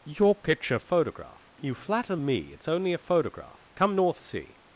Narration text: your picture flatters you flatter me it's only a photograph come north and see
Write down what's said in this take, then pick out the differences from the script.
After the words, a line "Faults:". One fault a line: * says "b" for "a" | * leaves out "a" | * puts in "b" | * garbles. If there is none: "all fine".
your picture photograph you flatter me it's only a photograph come north see
Faults:
* says "photograph" for "flatters"
* leaves out "and"